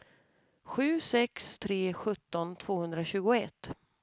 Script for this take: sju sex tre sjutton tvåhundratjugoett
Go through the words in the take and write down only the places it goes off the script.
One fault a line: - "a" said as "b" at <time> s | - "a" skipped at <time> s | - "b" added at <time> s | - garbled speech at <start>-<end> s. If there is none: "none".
none